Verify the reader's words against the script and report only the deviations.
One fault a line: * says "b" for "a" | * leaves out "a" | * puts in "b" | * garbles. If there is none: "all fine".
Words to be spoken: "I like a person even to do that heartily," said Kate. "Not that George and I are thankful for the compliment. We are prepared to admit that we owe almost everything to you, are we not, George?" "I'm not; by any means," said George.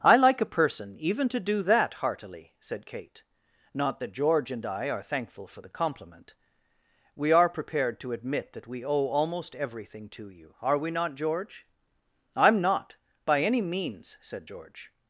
all fine